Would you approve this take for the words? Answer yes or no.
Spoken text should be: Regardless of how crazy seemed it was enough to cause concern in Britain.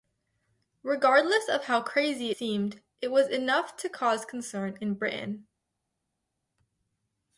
yes